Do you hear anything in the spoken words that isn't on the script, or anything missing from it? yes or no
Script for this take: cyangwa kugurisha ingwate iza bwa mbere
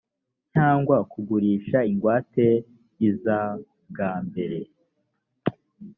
no